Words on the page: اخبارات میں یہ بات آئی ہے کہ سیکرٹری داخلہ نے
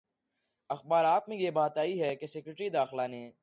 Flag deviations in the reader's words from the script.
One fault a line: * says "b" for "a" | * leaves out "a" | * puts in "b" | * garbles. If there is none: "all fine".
all fine